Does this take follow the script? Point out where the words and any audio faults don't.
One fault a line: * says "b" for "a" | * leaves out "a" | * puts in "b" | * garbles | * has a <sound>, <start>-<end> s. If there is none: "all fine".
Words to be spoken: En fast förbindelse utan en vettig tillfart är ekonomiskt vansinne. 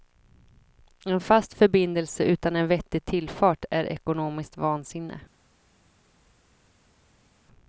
all fine